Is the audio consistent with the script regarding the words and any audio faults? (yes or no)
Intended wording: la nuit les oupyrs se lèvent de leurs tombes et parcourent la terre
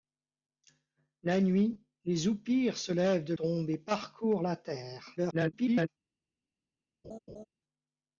no